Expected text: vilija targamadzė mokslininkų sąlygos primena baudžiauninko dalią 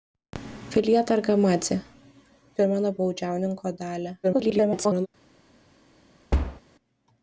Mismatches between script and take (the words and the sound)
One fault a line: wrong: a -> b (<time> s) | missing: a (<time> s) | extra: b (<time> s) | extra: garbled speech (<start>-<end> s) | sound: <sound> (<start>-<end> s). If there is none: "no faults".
missing: mokslininkų sąlygos (1.8 s)
extra: garbled speech (4.2-5.1 s)
sound: thud (6.3-6.6 s)